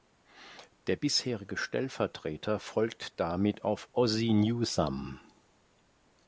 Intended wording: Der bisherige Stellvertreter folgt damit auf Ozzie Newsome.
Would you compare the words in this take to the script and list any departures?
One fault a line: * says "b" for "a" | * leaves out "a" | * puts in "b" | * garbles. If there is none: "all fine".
all fine